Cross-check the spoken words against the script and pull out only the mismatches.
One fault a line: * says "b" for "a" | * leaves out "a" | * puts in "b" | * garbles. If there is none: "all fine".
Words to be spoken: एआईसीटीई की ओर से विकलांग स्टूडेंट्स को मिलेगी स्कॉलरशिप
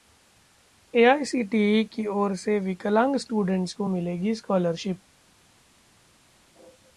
all fine